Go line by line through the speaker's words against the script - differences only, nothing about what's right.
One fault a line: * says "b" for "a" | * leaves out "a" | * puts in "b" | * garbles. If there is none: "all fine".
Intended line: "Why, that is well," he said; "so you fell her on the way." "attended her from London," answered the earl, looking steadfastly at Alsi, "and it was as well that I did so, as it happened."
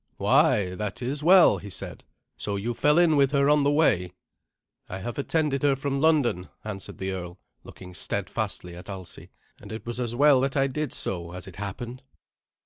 * puts in "in with"
* puts in "I have"